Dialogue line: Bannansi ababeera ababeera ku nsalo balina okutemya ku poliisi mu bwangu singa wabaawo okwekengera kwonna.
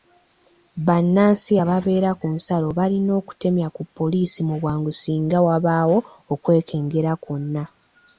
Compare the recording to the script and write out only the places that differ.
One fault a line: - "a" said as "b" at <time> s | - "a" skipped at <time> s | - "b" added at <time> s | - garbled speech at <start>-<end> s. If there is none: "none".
- "ababeera" skipped at 2.1 s